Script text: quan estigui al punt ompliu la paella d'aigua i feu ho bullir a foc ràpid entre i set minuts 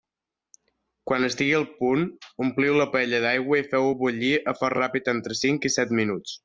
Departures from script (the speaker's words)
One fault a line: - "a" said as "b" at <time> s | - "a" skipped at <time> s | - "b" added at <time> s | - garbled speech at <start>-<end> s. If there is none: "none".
- "cinc" added at 5.4 s